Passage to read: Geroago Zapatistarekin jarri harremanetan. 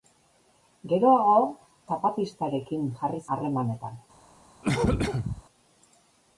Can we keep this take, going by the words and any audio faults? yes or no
no